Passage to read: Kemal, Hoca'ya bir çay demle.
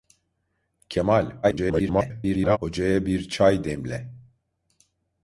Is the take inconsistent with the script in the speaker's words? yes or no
yes